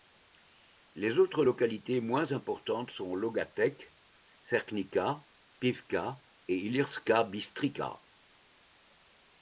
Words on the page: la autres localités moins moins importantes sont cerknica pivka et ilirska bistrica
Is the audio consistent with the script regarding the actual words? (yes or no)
no